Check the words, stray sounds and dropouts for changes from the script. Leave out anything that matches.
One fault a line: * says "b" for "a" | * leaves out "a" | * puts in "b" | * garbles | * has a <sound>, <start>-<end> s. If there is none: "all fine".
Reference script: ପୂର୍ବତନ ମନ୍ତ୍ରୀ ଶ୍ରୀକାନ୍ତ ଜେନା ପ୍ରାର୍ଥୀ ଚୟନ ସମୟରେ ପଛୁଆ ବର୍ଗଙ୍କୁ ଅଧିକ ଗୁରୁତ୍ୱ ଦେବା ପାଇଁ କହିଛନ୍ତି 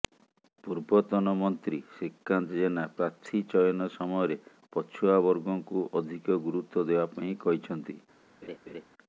* has a laugh, 8.4-8.8 s